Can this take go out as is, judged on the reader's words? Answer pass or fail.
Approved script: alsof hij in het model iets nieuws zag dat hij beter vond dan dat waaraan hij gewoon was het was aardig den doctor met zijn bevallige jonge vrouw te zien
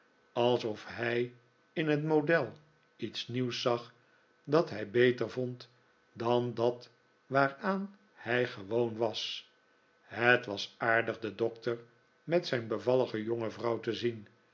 pass